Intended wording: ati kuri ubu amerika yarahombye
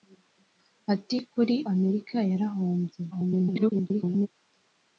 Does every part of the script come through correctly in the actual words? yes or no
no